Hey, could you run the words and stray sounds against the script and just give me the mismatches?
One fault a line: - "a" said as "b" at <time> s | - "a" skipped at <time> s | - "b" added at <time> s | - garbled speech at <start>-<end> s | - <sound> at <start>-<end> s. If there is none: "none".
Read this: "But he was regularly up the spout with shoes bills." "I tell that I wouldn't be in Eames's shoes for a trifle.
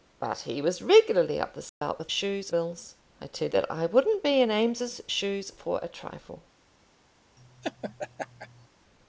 - dropout at 1.7-1.8 s
- laugh at 7.4-8.7 s